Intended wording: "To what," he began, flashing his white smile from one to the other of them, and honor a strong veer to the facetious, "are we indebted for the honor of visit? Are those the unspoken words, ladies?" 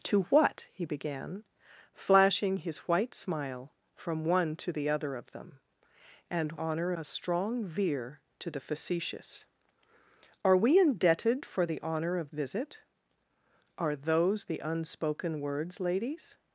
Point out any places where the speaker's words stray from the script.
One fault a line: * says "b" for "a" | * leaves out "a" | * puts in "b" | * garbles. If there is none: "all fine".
all fine